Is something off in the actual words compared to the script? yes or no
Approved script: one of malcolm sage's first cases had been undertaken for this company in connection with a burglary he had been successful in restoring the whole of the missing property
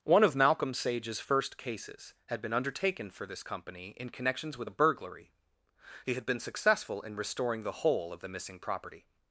yes